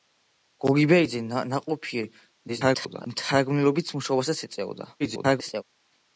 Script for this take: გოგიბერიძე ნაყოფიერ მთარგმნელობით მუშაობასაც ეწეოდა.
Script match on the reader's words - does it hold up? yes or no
no